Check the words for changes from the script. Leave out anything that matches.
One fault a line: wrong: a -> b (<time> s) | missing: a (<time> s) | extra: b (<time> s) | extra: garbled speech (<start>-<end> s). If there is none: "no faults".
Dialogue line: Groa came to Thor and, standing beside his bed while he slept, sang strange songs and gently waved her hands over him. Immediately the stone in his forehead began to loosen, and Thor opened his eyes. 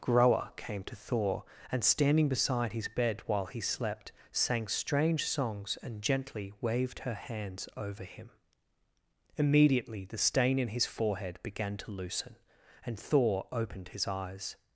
wrong: stone -> stain (10.2 s)